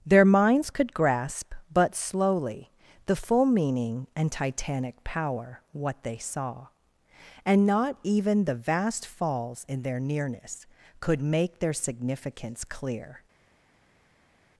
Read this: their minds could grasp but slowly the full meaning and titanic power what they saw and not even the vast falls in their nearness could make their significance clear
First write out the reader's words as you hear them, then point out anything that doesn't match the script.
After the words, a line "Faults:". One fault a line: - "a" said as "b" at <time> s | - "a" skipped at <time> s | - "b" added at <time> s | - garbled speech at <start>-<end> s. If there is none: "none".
their minds could grasp but slowly the full meaning and titanic power what they saw and not even the vast falls in their nearness could make their significance clear
Faults:
none